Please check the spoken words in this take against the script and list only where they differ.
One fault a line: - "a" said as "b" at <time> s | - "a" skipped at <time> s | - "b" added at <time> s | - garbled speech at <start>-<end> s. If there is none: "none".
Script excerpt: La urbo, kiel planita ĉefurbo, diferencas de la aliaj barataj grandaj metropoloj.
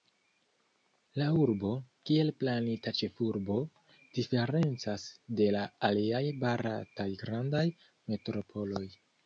none